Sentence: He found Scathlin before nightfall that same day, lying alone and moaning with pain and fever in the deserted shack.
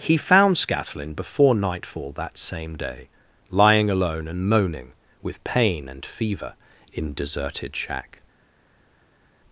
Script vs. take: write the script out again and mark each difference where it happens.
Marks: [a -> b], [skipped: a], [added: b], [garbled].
He found Scathlin before nightfall that same day, lying alone and moaning with pain and fever in [skipped: the] deserted shack.